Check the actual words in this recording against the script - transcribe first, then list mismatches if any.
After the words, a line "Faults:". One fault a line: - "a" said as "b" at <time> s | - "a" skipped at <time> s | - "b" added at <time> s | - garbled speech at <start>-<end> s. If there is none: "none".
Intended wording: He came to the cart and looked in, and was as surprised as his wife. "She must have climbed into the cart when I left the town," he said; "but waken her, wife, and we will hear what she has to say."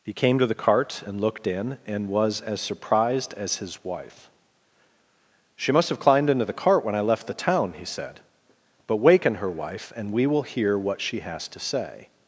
He came to the cart and looked in, and was as surprised as his wife. "She must have climbed into the cart when I left the town," he said; "but waken her, wife, and we will hear what she has to say."
Faults:
none